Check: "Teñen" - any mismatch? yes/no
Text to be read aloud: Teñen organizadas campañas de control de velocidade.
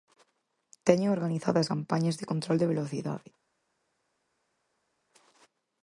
no